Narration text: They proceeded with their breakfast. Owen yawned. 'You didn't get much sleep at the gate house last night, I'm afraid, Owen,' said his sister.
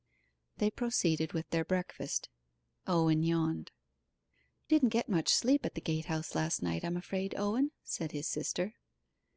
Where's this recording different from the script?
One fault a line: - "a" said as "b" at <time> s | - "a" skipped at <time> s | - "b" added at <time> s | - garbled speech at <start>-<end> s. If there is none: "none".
- "You" skipped at 3.7 s